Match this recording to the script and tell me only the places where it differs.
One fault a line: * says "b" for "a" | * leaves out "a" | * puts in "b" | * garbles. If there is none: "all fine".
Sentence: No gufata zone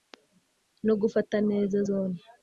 * puts in "neza"